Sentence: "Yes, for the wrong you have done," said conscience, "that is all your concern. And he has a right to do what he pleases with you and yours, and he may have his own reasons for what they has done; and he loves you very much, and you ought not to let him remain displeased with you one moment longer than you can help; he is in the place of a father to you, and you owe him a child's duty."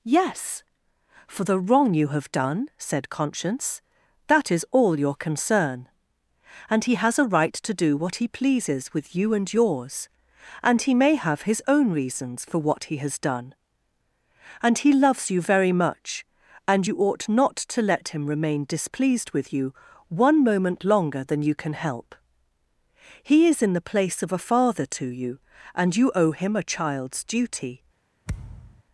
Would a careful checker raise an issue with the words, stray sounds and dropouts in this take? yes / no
yes